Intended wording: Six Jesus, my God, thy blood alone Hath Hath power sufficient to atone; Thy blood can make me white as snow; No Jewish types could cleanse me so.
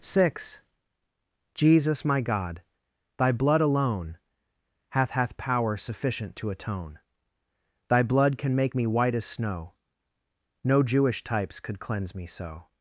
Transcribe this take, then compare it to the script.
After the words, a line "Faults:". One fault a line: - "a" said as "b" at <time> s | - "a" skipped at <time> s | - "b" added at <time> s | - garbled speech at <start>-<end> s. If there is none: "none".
Six Jesus, my God, thy blood alone Hath Hath power sufficient to atone; Thy blood can make me white as snow; No Jewish types could cleanse me so.
Faults:
none